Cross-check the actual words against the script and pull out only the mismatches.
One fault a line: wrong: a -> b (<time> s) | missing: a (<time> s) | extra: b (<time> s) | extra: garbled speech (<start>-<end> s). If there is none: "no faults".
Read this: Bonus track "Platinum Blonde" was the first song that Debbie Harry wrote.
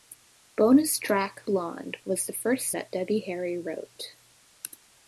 missing: Platinum (1.4 s)
missing: song (2.7 s)